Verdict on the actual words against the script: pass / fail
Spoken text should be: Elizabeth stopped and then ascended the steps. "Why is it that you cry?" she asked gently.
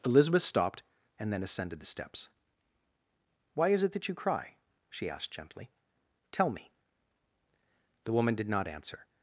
fail